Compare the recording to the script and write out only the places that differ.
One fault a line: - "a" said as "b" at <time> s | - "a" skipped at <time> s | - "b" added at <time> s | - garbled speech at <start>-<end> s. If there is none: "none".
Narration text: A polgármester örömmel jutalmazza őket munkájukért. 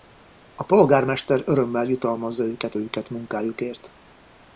- "őket" added at 2.8 s